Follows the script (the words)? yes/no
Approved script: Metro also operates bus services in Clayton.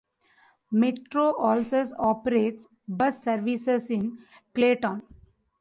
yes